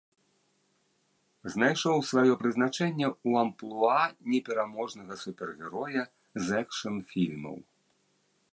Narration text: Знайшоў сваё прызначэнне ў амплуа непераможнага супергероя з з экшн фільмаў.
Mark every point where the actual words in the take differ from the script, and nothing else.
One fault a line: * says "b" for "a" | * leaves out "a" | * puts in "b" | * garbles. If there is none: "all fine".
* leaves out "з"